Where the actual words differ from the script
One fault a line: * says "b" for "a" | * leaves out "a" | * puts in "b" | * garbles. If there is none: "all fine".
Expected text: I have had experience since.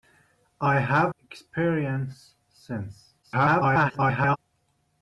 * leaves out "had"
* garbles